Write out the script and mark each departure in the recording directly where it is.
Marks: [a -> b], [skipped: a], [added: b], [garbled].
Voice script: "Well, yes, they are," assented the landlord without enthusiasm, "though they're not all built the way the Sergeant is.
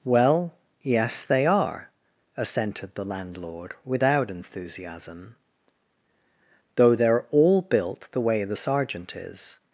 "Well, yes, they are," assented the landlord without enthusiasm, "though they're [skipped: not] all built the way the Sergeant is.